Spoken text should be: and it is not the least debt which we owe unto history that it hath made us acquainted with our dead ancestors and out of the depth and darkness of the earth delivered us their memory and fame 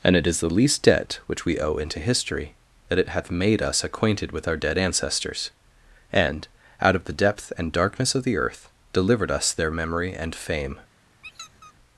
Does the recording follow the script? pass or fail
fail